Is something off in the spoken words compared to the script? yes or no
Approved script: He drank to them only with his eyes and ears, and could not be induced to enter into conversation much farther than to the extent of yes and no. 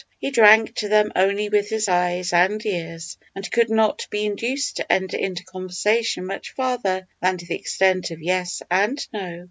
no